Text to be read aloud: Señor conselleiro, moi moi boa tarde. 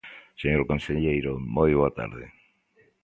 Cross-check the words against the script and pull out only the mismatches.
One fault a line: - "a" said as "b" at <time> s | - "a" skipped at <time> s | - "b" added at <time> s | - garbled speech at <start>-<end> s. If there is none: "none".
- "moi" skipped at 1.7 s